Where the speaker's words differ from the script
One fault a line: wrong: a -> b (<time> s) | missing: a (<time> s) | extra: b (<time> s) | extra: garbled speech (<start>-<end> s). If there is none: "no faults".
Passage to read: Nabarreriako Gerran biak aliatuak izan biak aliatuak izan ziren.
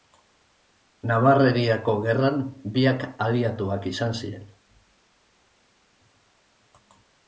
missing: biak aliatuak izan (4.2 s)